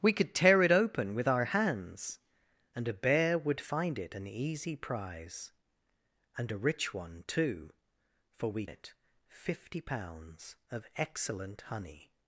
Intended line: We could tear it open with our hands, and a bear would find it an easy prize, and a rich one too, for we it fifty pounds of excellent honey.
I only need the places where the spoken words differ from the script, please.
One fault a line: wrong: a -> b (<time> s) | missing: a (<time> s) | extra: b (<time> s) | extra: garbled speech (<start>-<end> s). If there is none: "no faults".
no faults